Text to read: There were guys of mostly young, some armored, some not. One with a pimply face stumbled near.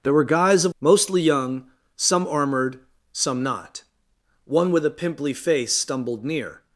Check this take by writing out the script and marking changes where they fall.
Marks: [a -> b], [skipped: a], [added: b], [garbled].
There were guys of mostly young, some armored, some not. One with a pimply face stumbled near.